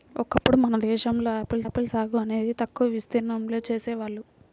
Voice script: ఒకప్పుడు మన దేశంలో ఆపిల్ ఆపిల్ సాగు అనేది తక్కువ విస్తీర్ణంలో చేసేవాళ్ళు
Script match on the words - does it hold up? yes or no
yes